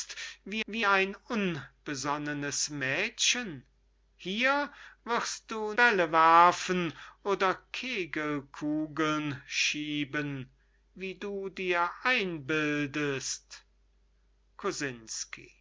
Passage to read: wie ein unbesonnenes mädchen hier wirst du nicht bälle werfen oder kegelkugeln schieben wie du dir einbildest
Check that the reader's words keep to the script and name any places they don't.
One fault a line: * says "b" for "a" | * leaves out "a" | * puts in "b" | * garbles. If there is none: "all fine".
* puts in "wie"
* leaves out "nicht"